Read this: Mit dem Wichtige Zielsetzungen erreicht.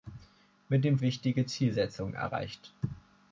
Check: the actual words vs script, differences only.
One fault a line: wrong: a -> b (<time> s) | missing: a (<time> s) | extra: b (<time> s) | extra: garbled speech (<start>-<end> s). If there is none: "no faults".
no faults